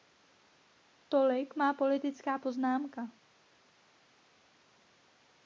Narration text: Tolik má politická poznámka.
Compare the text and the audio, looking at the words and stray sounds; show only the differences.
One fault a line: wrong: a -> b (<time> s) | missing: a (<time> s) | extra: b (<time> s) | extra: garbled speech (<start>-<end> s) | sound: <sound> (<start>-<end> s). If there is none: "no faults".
no faults